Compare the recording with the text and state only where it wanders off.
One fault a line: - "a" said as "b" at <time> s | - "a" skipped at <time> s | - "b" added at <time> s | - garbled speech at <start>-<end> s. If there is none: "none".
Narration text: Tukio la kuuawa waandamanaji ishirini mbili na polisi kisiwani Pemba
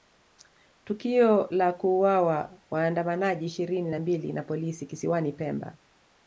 - "na" added at 3.9 s